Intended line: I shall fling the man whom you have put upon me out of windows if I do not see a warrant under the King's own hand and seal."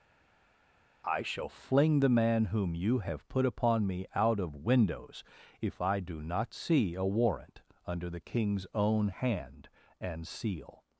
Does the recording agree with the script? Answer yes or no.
yes